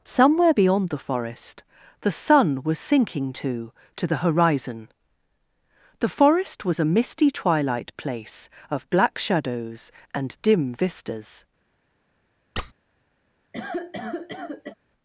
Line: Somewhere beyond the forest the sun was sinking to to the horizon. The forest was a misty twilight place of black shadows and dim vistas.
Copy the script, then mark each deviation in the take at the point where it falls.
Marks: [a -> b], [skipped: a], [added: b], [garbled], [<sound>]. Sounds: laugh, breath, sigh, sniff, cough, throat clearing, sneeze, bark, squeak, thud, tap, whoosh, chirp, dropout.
Somewhere beyond the forest the sun was sinking to to the horizon. The forest was a misty twilight place of black shadows and dim vistas. [squeak] [cough]